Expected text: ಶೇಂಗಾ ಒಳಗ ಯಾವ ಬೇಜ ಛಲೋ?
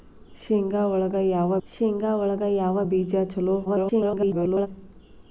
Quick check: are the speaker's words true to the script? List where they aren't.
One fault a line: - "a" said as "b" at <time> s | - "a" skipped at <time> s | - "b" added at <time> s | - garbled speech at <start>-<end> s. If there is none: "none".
- "ಶೇಂಗಾ ಒಳಗ ಯಾವ" added at 1.7 s
- garbled speech at 3.6-4.7 s